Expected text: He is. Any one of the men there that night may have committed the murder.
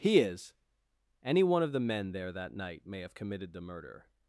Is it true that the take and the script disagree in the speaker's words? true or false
false